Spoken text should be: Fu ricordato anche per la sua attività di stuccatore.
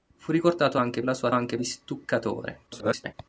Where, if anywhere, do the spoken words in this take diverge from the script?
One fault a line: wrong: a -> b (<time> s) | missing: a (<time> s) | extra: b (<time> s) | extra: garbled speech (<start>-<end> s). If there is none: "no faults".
missing: per (1.0 s)
wrong: attività -> anche (1.3 s)
extra: garbled speech (2.7-3.1 s)